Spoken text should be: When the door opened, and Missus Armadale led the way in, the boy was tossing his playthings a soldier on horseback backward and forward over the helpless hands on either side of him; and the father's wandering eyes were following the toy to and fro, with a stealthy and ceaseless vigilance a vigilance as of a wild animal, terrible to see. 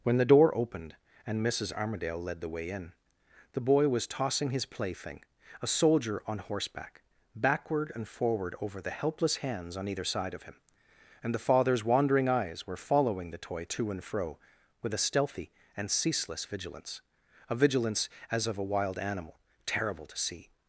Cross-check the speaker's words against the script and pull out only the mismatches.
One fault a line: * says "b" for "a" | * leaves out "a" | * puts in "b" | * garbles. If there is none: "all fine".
* says "plaything" for "playthings"